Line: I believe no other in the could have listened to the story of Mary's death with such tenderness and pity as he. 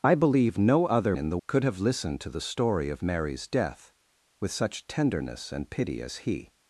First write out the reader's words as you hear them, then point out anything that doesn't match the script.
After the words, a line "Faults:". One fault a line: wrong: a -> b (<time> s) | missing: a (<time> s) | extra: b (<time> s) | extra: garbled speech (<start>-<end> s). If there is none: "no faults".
I believe no other in the could have listened to the story of Mary's death with such tenderness and pity as he.
Faults:
no faults